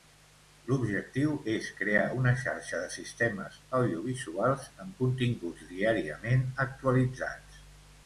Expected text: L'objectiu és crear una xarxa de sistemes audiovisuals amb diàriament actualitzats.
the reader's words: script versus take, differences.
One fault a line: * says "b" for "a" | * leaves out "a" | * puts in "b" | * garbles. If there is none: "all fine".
* puts in "continguts"